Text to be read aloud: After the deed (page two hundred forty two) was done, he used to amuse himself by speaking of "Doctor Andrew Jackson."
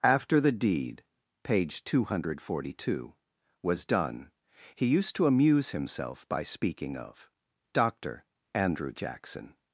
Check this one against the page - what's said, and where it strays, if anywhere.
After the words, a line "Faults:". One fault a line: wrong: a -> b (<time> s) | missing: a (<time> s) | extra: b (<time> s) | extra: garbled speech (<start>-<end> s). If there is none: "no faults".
After the deed (page two hundred forty two) was done, he used to amuse himself by speaking of "Doctor Andrew Jackson."
Faults:
no faults